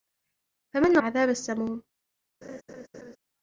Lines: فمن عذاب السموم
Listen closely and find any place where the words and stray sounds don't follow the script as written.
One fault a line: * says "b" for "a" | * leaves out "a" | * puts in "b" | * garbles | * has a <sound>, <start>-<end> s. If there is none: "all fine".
* has a laugh, 2.4-3.2 s